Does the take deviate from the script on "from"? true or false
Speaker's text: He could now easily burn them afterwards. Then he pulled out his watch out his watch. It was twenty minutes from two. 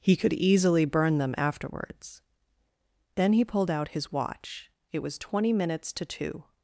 true